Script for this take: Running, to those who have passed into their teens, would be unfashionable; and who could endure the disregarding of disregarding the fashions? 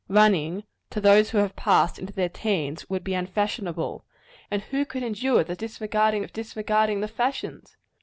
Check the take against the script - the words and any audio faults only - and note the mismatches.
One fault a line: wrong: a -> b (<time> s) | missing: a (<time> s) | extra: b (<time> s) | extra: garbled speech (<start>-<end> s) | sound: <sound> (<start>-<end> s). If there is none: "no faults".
no faults